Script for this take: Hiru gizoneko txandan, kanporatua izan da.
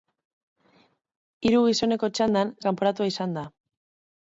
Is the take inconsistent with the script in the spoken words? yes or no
no